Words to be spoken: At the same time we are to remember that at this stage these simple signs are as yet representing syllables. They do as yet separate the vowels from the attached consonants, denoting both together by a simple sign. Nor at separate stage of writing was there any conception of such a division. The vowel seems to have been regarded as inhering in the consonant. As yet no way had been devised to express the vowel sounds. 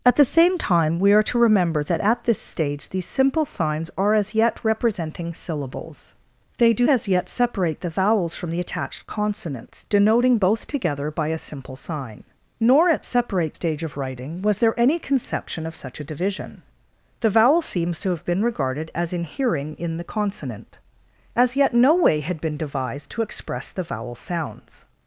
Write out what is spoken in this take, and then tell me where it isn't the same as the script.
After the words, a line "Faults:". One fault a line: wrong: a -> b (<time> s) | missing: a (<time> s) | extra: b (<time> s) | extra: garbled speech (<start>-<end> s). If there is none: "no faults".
At the same time we are to remember that at this stage these simple signs are as yet representing syllables. They do as yet separate the vowels from the attached consonants, denoting both together by a simple sign. Nor at separate stage of writing was there any conception of such a division. The vowel seems to have been regarded as inhering in the consonant. As yet no way had been devised to express the vowel sounds.
Faults:
no faults